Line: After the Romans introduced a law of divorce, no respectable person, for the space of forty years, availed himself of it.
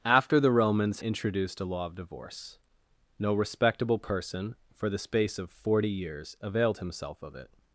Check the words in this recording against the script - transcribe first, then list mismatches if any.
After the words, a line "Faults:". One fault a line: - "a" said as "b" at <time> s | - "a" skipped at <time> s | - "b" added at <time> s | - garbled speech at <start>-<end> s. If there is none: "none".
After the Romans introduced a law of divorce, no respectable person, for the space of forty years, availed himself of it.
Faults:
none